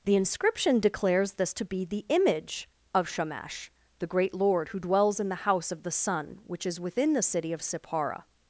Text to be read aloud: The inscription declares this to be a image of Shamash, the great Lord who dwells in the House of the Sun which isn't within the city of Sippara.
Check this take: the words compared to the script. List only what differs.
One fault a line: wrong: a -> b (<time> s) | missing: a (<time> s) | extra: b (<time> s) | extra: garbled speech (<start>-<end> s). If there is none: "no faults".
wrong: a -> the (1.9 s)
wrong: isn't -> is (6.7 s)